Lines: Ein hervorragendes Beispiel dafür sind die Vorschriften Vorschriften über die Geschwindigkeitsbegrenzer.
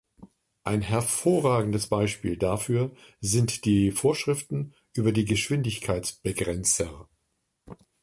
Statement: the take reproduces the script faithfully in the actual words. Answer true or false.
false